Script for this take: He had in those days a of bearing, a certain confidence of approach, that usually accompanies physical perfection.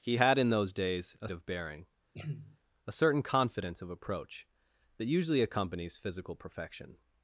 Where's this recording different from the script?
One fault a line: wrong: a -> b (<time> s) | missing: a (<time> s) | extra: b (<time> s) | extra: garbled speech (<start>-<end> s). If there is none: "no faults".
no faults